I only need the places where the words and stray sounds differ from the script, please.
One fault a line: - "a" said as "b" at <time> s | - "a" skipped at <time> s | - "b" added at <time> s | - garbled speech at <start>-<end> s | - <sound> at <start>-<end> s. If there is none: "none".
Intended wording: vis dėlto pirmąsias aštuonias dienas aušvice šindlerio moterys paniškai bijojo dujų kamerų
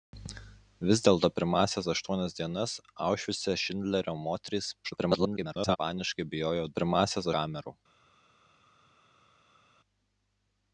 - garbled speech at 4.8-5.8 s
- "dujų" said as "pirmąsias" at 6.7 s